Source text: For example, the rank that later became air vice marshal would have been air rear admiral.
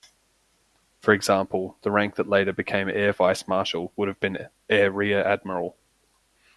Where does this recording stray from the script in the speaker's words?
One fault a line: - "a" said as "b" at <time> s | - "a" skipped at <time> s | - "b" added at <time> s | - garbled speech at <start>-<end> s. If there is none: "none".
none